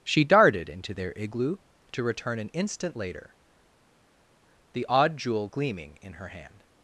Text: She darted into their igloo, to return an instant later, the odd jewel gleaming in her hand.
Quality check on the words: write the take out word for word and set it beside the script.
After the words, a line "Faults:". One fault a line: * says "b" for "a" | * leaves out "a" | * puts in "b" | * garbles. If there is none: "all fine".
She darted into their igloo, to return an instant later, the odd jewel gleaming in her hand.
Faults:
all fine